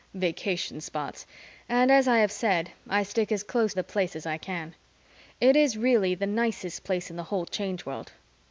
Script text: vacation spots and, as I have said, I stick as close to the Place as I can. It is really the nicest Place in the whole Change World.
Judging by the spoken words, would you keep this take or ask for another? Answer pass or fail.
fail